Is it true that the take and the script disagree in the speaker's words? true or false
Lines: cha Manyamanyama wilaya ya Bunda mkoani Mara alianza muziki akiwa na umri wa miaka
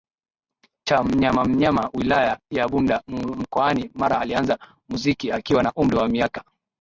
false